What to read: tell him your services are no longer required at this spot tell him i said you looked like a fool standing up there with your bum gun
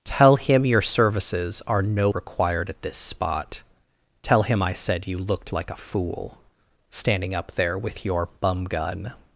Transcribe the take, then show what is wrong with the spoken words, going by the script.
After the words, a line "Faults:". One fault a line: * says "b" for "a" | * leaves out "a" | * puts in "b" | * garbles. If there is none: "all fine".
tell him your services are no required at this spot tell him i said you looked like a fool standing up there with your bum gun
Faults:
* leaves out "longer"